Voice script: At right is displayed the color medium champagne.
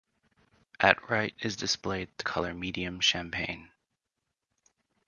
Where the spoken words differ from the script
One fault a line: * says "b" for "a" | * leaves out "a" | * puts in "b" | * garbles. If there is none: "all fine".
all fine